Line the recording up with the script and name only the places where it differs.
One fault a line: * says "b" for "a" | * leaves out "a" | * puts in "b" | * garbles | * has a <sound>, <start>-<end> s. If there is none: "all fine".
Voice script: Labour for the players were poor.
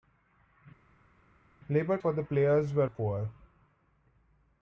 all fine